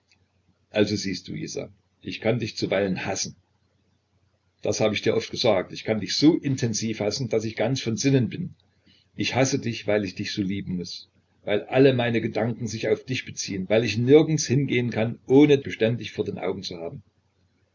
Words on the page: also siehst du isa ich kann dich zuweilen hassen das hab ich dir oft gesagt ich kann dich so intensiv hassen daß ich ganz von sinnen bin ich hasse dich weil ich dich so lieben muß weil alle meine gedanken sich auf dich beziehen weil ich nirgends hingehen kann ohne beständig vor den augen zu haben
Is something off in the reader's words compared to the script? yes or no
no